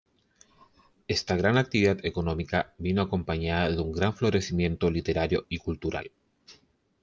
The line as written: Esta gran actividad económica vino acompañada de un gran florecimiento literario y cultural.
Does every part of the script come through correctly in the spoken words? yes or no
yes